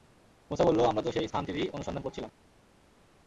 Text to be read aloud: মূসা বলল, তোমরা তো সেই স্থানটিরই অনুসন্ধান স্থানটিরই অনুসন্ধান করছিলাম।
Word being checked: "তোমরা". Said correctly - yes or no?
no